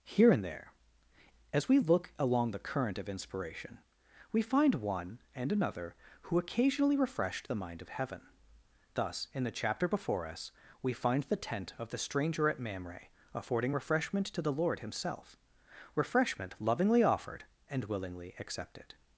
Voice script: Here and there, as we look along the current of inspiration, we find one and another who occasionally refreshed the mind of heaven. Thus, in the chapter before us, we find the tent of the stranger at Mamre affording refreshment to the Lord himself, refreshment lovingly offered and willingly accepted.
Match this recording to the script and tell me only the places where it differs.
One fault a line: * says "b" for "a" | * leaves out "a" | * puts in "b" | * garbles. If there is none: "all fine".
all fine